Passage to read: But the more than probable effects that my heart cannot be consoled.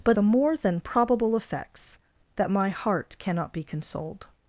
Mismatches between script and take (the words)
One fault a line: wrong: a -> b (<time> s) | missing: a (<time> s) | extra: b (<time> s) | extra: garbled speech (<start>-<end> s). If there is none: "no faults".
no faults